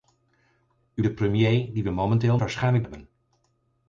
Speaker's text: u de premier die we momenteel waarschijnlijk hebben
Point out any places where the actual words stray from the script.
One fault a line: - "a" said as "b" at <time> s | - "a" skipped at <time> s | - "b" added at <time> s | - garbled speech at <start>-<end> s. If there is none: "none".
none